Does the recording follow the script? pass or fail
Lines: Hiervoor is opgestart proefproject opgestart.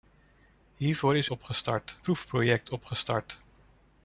pass